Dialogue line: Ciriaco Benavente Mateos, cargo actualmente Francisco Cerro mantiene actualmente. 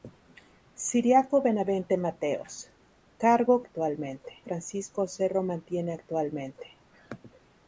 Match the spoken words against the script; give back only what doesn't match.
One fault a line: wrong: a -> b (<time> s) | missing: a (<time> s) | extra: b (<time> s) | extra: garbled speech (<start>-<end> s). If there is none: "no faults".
no faults